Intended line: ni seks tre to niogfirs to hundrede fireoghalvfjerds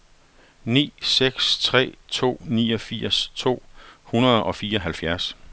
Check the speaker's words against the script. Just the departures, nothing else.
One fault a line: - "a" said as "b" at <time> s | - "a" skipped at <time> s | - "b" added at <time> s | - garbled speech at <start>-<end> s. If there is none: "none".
- "og" added at 4.4 s